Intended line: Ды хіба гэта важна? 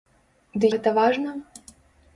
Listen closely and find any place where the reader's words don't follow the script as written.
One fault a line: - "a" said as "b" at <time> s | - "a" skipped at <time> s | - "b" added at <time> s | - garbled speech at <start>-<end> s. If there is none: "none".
- "хіба" skipped at 0.7 s